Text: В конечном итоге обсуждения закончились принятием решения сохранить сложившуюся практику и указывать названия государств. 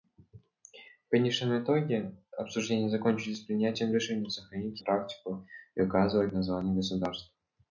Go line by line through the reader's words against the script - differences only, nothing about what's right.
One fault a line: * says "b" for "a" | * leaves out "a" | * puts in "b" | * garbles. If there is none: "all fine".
* leaves out "сложившуюся"